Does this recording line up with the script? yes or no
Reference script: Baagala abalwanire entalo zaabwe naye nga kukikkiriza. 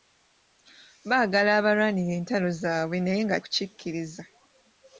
yes